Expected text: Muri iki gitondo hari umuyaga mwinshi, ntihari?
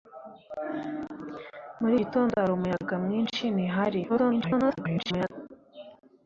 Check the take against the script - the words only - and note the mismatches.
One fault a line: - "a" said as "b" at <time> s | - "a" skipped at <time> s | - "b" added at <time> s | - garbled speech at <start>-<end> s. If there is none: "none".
- "iki" skipped at 1.9 s
- garbled speech at 4.1-5.3 s